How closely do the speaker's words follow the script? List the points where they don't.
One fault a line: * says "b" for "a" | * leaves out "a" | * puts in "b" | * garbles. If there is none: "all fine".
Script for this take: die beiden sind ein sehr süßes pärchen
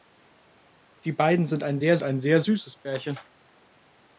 * puts in "ein sehr"